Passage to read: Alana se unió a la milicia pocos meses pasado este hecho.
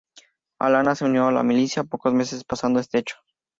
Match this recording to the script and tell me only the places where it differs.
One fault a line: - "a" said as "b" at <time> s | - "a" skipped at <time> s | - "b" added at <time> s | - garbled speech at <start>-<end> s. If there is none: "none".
none